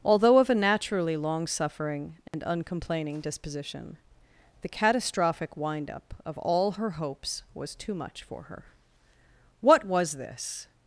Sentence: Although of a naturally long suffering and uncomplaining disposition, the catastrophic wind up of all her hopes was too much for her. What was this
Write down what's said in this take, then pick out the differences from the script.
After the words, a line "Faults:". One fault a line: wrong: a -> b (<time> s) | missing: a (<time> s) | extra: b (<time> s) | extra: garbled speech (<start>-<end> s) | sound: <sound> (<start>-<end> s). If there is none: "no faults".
Although of a naturally long suffering and uncomplaining disposition, the catastrophic wind up of all her hopes was too much for her. What was this
Faults:
sound: dropout (2.3-2.3 s)